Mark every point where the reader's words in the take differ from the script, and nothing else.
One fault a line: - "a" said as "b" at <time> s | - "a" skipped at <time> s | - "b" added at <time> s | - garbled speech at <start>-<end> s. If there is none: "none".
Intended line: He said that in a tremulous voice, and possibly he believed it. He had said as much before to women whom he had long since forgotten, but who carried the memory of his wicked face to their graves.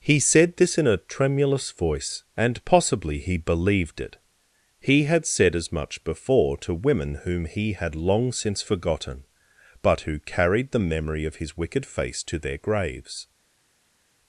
- "that" said as "this" at 0.6 s